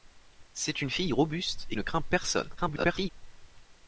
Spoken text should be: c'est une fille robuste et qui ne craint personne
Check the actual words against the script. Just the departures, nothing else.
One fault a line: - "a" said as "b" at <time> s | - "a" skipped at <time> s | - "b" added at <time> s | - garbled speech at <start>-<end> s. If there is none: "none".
- "qui" skipped at 1.8 s
- garbled speech at 2.6-3.1 s